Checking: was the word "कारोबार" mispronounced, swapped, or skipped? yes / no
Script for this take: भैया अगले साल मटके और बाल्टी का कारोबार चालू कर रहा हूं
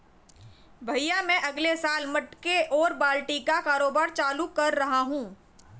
no